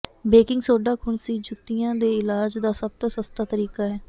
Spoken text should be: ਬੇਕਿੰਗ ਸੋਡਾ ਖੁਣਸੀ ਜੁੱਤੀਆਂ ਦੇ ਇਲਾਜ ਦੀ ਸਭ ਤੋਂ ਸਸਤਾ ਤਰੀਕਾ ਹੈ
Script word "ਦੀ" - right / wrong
wrong